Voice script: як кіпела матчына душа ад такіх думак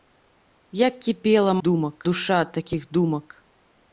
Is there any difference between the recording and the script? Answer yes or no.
yes